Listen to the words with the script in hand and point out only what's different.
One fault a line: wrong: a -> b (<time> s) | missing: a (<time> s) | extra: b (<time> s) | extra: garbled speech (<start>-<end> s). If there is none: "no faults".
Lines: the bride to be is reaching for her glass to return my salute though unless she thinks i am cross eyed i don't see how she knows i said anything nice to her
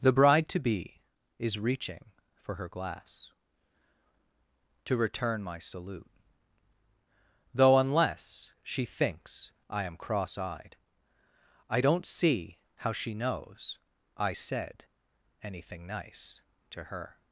no faults